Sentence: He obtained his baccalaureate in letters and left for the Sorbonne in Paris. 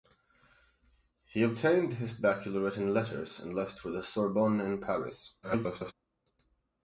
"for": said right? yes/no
yes